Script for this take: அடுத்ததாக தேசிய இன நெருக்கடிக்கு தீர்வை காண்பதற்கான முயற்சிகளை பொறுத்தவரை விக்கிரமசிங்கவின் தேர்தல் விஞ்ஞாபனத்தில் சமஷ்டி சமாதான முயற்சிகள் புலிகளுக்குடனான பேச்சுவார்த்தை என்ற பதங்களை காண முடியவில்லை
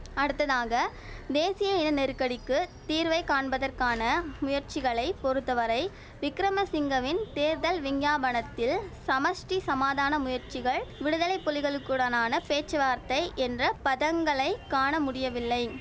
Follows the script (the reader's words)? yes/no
no